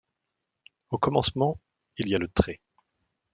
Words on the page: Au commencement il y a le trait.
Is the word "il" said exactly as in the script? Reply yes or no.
yes